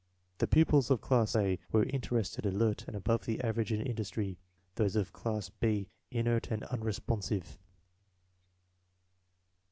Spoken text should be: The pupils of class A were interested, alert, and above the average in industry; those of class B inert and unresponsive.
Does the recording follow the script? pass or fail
pass